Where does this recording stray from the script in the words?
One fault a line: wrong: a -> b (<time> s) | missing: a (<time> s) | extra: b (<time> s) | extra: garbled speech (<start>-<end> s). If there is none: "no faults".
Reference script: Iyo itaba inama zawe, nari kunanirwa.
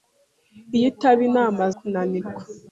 missing: zawe nari (1.6 s)